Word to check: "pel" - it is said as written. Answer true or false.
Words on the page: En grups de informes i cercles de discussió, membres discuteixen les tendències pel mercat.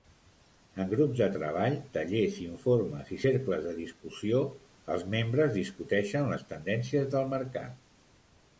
false